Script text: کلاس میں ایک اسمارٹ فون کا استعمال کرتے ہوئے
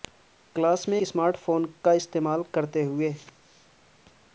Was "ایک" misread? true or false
true